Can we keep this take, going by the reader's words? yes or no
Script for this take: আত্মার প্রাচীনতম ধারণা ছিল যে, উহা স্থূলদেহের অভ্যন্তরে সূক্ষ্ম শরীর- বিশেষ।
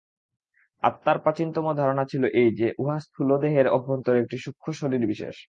no